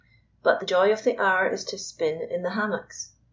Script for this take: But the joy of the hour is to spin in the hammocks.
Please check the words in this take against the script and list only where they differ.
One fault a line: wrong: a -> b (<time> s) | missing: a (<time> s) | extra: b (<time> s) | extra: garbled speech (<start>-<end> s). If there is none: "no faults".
no faults